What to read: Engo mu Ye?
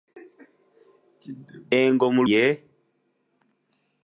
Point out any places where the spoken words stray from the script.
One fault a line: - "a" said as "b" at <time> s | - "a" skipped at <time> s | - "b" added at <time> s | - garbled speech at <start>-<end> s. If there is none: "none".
none